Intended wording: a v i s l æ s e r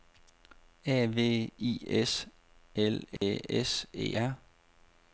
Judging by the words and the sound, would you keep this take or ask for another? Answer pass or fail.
fail